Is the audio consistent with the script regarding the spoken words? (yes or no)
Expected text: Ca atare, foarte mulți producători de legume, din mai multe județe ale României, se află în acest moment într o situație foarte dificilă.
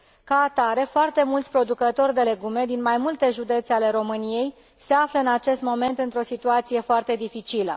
yes